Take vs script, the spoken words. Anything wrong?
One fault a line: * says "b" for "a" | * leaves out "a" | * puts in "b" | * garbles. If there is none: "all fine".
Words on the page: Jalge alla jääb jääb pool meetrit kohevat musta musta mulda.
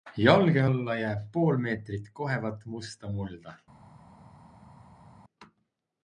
* leaves out "jääb"
* leaves out "musta"